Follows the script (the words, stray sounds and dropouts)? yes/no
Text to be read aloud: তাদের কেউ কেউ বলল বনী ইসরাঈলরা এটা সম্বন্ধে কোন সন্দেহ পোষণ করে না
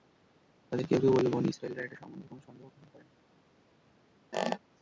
no